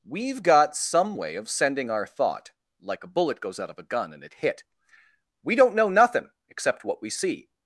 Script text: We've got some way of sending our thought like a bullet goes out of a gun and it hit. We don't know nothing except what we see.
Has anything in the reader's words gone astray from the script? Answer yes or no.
no